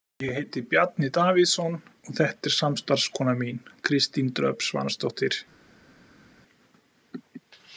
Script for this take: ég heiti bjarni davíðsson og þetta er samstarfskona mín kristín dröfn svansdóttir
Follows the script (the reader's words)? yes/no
yes